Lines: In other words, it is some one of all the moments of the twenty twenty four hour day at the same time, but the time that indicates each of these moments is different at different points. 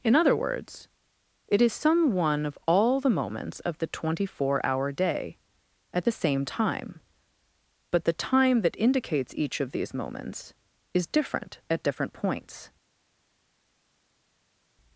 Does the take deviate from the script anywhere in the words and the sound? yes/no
yes